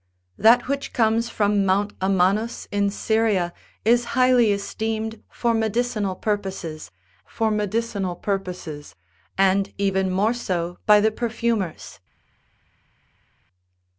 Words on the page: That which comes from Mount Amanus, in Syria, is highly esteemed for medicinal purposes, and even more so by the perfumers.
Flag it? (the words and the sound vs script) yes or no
yes